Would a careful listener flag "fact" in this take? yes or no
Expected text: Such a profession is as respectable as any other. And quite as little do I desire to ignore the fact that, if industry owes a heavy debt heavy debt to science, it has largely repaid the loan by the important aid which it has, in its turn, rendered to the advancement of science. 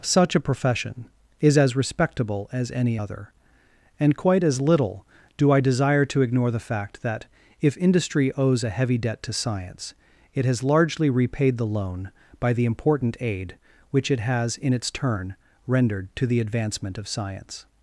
no